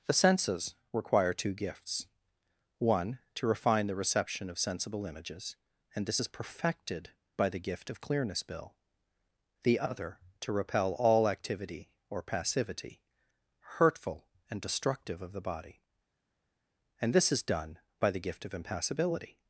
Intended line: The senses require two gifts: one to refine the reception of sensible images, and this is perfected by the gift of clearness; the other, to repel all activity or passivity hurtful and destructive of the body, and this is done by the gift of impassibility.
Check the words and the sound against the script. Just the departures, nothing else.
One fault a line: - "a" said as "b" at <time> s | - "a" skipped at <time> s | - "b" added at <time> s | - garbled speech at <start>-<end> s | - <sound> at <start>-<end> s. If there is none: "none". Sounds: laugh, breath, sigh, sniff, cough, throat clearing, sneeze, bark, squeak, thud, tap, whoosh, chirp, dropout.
- "bill" added at 8.4 s